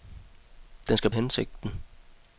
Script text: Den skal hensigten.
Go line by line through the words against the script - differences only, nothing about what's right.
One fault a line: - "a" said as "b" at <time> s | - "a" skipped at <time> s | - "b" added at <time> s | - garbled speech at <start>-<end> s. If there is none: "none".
none